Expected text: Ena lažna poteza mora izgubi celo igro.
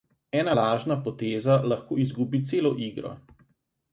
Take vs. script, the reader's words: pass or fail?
fail